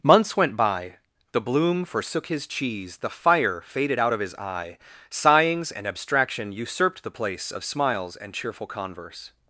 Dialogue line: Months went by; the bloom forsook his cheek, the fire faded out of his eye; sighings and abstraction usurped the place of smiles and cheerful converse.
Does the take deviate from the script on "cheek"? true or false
true